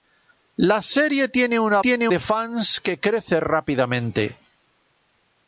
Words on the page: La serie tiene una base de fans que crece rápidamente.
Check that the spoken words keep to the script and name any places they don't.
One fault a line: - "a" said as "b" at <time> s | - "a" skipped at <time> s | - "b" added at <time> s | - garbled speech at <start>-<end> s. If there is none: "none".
- "base" said as "tiene" at 1.8 s